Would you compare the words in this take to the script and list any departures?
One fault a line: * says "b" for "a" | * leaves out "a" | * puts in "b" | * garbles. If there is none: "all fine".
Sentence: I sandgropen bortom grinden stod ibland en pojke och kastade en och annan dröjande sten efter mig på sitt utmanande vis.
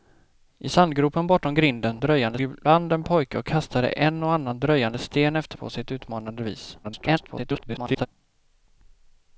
* says "dröjande" for "stod"
* leaves out "mig"
* garbles